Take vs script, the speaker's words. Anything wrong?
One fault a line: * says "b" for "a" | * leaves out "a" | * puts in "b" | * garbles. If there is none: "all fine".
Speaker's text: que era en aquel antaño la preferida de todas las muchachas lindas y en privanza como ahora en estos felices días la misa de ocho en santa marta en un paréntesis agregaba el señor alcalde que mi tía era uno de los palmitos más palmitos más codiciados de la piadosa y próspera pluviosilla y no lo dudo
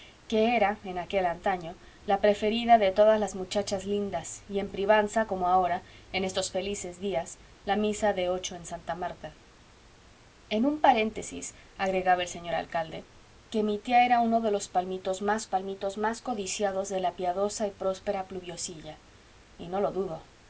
all fine